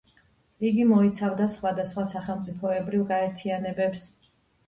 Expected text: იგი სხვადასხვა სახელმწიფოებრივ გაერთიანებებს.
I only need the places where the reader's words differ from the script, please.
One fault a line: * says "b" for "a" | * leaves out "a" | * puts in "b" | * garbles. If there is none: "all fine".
* puts in "მოიცავდა"